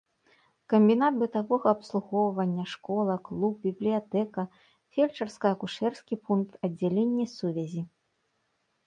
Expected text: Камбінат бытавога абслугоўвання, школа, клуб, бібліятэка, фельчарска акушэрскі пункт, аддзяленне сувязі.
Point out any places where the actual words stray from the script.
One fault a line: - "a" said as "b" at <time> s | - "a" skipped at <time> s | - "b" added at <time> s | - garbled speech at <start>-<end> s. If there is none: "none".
none